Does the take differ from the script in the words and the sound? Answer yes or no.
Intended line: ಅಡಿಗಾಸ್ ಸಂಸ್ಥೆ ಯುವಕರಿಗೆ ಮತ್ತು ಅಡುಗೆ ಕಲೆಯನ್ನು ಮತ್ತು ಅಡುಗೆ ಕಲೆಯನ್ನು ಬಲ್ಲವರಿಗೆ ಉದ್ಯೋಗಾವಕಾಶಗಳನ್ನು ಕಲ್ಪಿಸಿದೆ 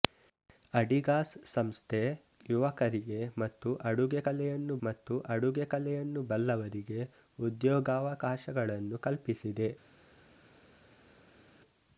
no